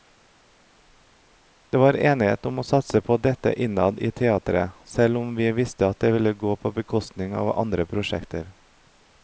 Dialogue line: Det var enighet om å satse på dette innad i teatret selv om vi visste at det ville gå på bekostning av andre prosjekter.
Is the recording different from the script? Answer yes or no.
no